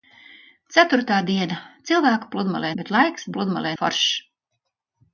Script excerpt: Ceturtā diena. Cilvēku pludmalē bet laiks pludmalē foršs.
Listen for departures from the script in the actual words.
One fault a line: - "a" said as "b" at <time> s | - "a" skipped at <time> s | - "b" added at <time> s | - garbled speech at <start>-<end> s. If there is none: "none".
none